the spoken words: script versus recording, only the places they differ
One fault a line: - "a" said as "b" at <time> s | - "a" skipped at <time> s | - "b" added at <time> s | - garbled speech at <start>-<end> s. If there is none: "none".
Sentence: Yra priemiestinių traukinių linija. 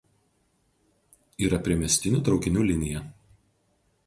none